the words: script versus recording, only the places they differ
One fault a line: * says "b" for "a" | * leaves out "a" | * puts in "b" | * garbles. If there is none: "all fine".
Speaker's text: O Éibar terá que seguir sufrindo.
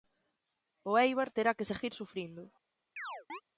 all fine